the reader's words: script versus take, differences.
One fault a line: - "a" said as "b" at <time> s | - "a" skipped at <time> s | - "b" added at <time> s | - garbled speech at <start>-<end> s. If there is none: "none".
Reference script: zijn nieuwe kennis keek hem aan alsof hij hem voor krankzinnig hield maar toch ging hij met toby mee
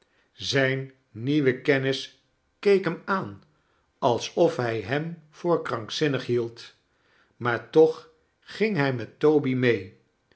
none